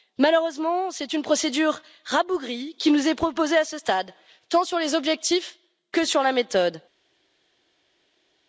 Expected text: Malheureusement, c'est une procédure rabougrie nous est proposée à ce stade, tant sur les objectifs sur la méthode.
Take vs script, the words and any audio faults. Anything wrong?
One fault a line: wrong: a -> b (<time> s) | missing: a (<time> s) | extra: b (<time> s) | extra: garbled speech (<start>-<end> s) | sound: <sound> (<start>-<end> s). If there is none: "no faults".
extra: qui (2.8 s)
extra: que (5.9 s)